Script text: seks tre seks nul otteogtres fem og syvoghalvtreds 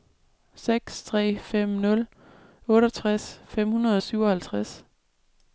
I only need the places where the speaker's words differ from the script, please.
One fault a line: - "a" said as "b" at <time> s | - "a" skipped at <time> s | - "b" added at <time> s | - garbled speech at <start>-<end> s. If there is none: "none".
- "seks" said as "fem" at 1.4 s
- "hundrede" added at 3.7 s